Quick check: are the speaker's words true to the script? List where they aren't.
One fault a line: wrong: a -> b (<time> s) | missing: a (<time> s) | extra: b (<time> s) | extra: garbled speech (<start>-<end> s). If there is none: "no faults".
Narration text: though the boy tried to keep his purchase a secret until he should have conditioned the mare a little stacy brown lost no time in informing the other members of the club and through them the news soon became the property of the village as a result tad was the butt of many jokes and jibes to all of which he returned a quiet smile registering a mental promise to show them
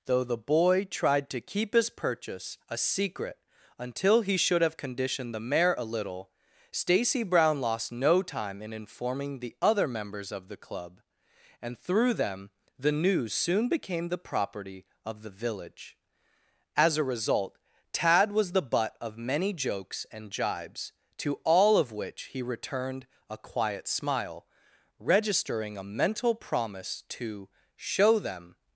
no faults